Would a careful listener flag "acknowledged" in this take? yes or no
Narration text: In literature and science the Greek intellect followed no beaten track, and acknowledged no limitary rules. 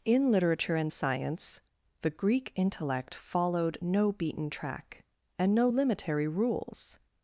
yes